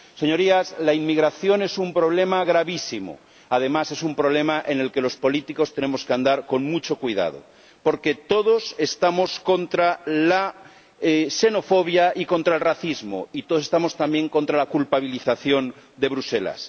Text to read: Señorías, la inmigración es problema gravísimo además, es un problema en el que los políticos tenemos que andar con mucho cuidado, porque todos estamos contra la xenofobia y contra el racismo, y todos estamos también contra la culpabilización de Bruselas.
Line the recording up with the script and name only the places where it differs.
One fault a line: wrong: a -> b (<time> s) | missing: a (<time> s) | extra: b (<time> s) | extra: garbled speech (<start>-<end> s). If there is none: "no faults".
extra: un (1.8 s)